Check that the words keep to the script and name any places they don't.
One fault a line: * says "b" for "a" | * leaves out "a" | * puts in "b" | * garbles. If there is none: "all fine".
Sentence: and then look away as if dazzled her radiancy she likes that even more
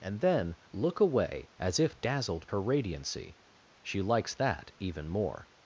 all fine